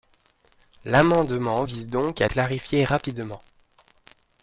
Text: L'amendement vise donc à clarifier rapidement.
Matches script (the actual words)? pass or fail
pass